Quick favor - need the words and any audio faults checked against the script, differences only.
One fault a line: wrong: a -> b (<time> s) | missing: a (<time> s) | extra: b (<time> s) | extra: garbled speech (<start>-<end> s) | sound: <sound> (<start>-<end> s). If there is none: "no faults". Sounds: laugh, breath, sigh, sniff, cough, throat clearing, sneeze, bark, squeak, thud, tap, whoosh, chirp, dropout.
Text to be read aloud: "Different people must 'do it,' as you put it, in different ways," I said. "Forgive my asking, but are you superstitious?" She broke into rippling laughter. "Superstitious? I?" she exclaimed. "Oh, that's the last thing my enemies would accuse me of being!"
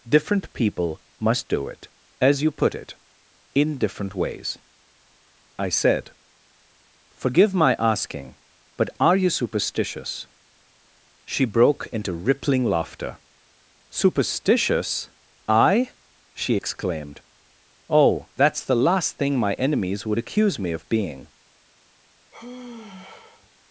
sound: sigh (22.3-23.5 s)